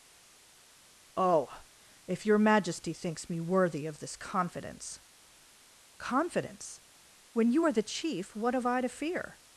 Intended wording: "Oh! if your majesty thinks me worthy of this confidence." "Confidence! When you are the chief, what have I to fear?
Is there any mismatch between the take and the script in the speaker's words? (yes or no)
no